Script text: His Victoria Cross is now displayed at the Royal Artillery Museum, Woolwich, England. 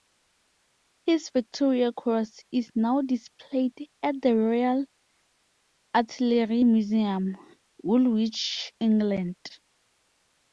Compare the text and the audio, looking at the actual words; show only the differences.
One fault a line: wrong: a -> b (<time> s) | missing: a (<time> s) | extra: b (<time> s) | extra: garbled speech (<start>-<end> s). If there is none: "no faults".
no faults